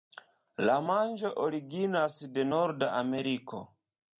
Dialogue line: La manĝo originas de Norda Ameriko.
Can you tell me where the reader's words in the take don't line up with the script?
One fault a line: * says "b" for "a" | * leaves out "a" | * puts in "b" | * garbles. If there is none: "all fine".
all fine